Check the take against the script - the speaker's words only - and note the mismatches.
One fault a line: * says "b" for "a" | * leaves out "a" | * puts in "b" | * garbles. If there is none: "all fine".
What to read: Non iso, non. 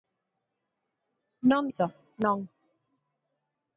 all fine